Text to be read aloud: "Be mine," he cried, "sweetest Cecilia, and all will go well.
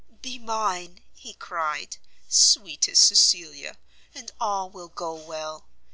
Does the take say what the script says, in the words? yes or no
yes